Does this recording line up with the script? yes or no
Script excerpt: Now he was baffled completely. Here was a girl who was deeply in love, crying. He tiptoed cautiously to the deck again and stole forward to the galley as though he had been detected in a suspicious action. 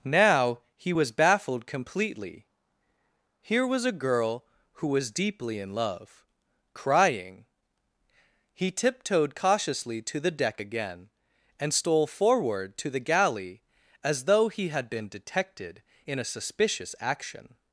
yes